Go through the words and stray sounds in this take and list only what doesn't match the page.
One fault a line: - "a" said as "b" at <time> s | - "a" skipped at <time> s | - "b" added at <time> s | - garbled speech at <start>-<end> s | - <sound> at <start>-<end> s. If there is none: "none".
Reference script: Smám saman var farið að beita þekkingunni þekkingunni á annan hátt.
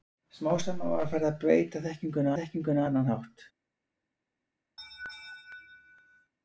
- laugh at 4.8-6.3 s